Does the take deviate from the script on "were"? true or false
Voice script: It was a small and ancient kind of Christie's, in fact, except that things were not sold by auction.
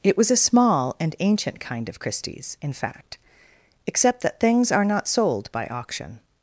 true